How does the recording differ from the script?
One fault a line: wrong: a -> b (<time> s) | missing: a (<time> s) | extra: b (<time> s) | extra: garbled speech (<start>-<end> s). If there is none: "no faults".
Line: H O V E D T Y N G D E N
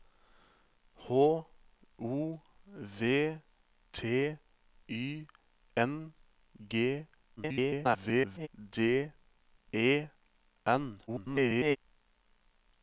missing: E D (3.4 s)
extra: garbled speech (7.4-8.5 s)
extra: garbled speech (11.1-11.8 s)